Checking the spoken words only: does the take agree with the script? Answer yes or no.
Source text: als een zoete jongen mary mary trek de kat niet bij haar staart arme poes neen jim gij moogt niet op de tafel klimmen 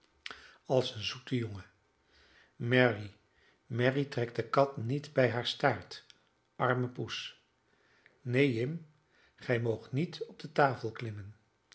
yes